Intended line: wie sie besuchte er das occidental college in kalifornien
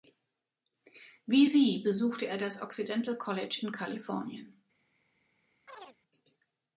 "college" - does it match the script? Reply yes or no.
yes